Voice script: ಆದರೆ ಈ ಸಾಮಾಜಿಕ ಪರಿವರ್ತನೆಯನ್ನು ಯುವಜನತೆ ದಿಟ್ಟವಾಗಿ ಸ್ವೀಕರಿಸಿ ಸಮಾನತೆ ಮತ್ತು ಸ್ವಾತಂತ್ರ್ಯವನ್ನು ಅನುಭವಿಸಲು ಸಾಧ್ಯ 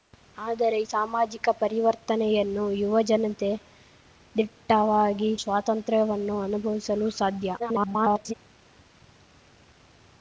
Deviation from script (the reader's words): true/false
true